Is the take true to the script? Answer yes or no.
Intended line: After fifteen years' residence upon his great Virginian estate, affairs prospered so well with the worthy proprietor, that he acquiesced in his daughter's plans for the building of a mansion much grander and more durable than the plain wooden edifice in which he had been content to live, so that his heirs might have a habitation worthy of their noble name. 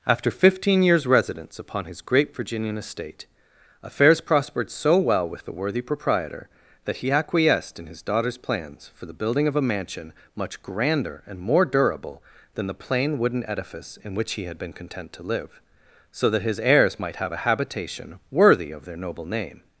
yes